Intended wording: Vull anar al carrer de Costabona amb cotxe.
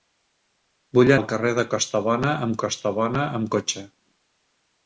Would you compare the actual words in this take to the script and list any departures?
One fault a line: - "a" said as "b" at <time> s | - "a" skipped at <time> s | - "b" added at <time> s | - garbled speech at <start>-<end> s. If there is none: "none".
- "anar" skipped at 1.1 s
- "Costabona amb" added at 2.6 s